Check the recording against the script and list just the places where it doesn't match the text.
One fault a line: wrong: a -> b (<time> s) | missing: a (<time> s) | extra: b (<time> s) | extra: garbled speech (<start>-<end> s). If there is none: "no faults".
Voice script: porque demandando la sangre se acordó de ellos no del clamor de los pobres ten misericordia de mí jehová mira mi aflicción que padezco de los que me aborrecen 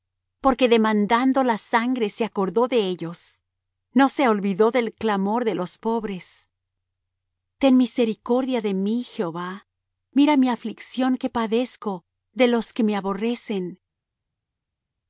extra: se olvidó (4.1 s)